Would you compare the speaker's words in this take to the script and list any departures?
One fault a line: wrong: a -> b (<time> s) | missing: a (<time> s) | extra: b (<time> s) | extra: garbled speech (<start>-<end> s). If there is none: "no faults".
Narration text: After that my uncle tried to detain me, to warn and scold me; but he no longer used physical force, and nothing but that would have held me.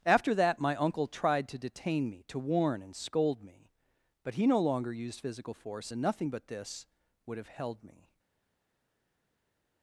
wrong: that -> this (6.5 s)